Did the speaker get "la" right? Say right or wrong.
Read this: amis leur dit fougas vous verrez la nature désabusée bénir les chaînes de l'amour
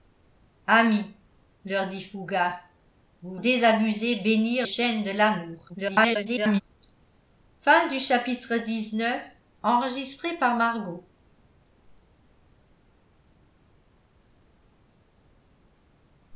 wrong